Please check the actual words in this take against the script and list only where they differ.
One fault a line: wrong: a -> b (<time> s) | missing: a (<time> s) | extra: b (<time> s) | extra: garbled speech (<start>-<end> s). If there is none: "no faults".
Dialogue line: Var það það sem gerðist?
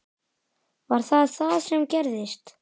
no faults